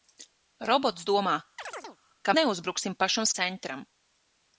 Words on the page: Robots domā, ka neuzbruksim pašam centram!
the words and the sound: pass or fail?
fail